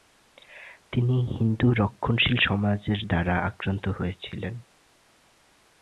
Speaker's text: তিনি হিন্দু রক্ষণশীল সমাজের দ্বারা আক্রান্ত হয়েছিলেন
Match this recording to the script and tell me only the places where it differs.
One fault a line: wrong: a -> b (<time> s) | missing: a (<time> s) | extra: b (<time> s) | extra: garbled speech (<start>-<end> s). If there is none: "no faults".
no faults